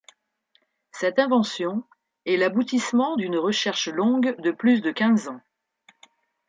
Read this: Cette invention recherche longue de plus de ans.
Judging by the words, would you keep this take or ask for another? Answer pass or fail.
fail